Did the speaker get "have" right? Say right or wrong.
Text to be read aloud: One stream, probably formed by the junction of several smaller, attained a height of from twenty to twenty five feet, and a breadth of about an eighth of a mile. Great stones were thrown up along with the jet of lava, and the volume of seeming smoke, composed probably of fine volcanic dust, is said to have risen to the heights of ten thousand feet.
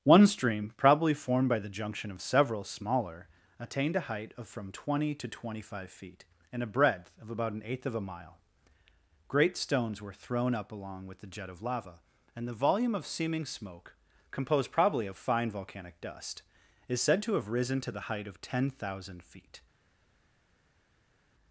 right